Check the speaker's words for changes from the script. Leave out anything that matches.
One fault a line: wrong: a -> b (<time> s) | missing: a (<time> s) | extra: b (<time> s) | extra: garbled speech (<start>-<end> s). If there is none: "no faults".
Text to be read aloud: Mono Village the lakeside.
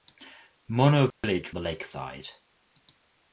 no faults